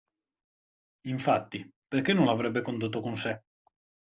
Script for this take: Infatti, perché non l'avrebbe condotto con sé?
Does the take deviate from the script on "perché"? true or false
false